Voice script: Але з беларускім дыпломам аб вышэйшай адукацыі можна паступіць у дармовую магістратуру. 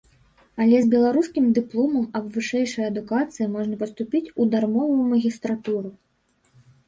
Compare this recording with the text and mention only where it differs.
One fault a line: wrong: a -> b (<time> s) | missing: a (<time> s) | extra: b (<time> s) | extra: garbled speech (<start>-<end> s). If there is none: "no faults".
no faults